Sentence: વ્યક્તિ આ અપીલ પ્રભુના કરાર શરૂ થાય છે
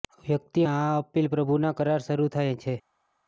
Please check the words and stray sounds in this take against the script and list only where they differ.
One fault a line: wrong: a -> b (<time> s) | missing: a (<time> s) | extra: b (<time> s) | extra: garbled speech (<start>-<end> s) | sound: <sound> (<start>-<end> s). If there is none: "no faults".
no faults